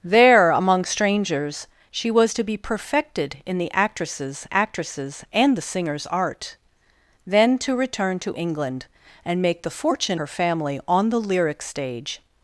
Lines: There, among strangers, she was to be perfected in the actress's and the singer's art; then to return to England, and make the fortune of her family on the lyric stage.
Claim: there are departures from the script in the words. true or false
true